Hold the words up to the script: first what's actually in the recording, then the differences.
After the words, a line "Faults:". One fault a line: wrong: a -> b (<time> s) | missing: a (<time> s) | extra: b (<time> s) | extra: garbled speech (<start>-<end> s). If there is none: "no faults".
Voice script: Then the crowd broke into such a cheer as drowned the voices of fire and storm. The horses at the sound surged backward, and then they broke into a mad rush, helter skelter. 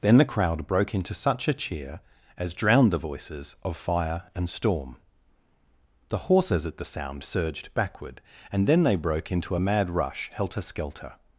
Then the crowd broke into such a cheer as drowned the voices of fire and storm. The horses at the sound surged backward, and then they broke into a mad rush, helter skelter.
Faults:
no faults